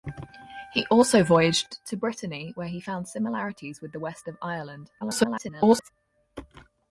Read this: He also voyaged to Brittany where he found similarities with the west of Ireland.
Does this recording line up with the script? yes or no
no